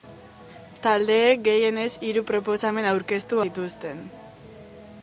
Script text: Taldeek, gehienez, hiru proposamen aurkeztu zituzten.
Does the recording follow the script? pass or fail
pass